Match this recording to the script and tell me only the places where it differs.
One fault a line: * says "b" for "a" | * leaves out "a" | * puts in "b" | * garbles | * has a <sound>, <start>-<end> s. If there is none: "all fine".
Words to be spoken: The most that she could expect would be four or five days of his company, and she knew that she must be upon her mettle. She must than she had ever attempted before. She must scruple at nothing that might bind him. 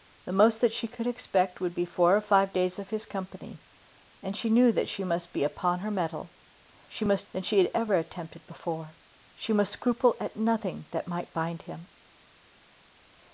all fine